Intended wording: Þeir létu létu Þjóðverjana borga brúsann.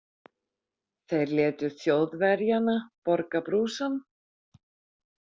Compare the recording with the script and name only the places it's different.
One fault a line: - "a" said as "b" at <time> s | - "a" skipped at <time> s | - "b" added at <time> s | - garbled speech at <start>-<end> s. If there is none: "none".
- "létu" skipped at 1.7 s